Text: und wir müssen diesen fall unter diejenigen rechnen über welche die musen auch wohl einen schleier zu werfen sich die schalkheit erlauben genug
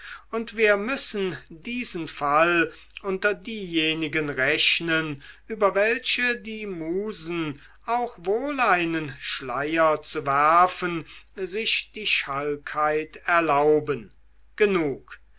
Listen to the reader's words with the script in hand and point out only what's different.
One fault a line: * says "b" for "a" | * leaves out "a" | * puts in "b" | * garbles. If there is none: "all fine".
all fine